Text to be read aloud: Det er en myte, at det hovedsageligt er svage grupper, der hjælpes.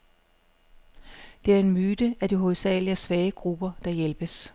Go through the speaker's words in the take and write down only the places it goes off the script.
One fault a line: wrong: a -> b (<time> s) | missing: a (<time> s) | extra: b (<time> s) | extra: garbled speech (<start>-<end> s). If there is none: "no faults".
no faults